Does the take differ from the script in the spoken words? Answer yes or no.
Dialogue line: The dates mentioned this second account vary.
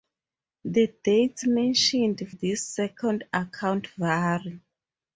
no